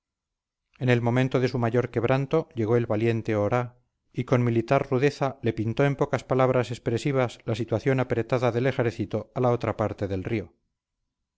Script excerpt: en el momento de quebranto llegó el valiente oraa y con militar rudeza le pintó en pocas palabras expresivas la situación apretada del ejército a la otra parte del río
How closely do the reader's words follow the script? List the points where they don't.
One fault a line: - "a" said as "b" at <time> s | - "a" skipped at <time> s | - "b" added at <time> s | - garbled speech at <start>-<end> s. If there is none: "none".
- "su mayor" added at 1.5 s